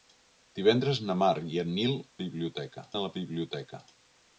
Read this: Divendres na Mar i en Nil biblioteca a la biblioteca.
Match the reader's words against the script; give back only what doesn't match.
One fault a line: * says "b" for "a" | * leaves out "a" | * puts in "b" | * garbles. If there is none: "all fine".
all fine